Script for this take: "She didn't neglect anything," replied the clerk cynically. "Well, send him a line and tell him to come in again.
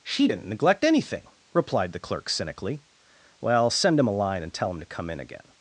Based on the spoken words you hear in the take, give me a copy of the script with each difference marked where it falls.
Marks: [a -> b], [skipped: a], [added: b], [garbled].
"She didn't neglect anything," replied the clerk cynically. "Well, send him a line and tell him to come in again.